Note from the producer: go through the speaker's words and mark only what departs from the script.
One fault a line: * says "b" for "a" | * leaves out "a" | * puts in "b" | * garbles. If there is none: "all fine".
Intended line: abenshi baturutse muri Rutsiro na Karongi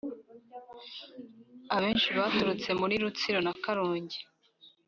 all fine